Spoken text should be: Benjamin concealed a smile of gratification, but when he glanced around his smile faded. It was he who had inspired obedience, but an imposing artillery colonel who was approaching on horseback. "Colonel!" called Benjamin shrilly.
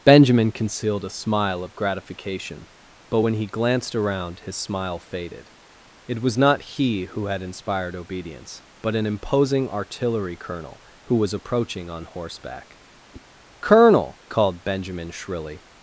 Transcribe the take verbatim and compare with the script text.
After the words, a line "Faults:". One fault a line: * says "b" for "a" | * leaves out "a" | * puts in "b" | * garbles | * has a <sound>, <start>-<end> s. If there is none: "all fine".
Benjamin concealed a smile of gratification, but when he glanced around his smile faded. It was not he who had inspired obedience, but an imposing artillery colonel who was approaching on horseback. "Colonel!" called Benjamin shrilly.
Faults:
* puts in "not"
* has a whoosh, 13.1-13.3 s